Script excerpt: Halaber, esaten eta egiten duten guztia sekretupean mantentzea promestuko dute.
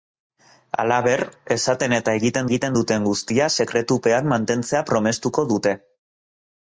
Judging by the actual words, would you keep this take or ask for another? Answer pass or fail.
fail